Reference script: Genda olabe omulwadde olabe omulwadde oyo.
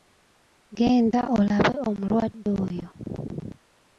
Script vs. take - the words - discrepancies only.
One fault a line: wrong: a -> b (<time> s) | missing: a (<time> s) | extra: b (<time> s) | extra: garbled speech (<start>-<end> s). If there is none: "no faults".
missing: olabe omulwadde (2.5 s)